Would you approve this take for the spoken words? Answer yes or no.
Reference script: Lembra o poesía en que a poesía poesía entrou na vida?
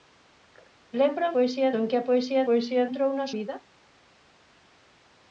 yes